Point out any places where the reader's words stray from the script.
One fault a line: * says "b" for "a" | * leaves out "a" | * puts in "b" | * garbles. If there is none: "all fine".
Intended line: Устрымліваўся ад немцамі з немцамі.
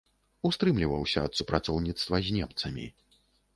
* says "супрацоўніцтва" for "немцамі"